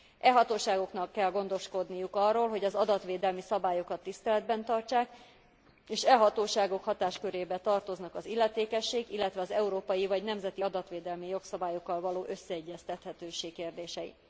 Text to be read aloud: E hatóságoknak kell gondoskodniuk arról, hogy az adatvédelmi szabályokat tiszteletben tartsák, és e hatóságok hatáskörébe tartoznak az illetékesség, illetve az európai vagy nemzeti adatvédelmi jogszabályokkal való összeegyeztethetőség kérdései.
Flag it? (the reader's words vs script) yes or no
no